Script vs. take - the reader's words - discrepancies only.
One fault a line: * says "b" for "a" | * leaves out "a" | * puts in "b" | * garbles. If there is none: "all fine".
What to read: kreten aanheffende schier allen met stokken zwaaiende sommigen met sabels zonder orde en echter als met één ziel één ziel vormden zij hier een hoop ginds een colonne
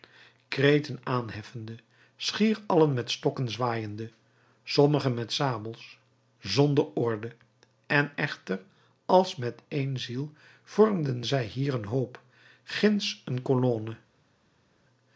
* leaves out "één ziel"